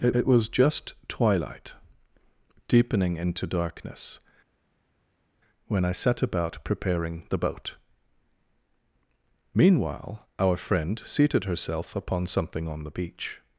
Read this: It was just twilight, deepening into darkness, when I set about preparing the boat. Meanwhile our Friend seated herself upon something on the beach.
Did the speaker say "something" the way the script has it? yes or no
yes